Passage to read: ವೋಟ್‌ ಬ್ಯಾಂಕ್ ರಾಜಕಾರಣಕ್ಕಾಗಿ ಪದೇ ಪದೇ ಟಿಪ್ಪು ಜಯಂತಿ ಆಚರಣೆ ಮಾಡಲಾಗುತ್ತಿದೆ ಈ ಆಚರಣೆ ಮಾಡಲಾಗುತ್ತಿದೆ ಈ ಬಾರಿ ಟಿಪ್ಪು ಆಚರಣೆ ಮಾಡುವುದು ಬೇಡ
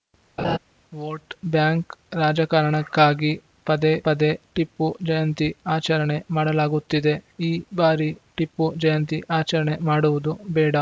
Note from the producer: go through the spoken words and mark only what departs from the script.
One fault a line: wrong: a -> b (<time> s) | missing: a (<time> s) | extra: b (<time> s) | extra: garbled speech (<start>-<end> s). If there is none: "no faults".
missing: ಆಚರಣೆ ಮಾಡಲಾಗುತ್ತಿದೆ ಈ (7.5 s)
extra: ಜಯಂತಿ (8.8 s)